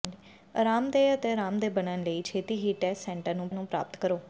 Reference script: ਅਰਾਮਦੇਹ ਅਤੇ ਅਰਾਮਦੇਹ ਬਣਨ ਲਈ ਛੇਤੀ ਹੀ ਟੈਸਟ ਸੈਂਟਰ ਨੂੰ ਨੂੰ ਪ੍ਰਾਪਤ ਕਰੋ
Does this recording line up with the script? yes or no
yes